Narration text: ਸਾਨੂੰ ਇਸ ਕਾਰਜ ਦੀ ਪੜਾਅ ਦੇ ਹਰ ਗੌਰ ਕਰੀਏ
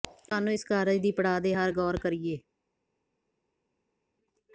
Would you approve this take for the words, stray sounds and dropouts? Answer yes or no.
yes